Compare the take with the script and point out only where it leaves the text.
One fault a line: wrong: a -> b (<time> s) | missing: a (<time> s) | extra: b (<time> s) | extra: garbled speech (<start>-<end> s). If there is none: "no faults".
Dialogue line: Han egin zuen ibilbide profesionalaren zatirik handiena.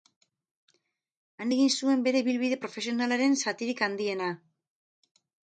extra: bere (2.1 s)